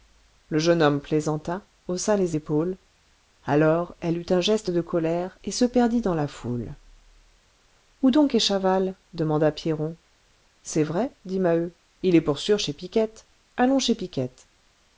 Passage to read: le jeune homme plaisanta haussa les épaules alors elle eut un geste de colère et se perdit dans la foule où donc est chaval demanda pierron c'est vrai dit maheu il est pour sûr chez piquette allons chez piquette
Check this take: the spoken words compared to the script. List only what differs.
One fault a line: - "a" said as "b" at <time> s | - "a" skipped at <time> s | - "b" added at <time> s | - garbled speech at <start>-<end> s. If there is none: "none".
none